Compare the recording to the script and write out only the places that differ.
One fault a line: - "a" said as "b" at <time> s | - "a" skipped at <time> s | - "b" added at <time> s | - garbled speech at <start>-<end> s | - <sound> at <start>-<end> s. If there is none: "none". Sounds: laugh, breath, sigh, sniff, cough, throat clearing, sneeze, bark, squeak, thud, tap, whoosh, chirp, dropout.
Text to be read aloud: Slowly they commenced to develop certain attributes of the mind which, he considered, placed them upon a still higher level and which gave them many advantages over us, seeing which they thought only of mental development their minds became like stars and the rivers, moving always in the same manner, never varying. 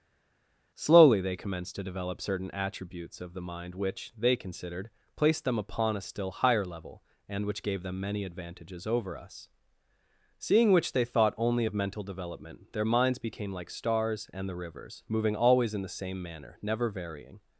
- "he" said as "they" at 4.2 s